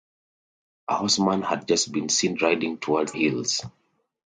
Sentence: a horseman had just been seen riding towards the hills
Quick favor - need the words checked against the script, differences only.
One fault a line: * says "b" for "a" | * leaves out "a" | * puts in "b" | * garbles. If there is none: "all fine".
* leaves out "the"